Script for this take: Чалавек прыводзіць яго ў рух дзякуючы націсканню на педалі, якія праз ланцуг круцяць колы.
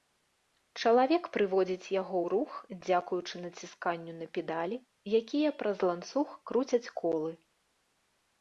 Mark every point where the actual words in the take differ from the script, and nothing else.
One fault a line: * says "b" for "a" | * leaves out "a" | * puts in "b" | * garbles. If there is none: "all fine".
all fine